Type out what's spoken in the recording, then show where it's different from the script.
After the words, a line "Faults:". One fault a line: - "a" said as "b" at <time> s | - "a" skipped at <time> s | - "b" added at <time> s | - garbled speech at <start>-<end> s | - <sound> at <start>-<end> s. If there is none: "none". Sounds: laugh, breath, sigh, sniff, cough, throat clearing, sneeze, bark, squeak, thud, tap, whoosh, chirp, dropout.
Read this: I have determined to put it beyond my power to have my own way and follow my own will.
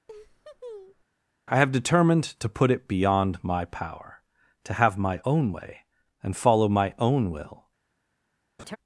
I have determined to put it beyond my power to have my own way and follow my own will.
Faults:
- laugh at 0.1-1.0 s
- laugh at 8.6-8.8 s